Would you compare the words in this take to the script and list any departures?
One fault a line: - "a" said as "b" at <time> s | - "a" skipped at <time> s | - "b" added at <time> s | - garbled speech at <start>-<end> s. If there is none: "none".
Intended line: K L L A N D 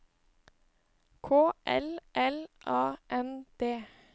none